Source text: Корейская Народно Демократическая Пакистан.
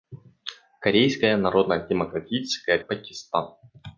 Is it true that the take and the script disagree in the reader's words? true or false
false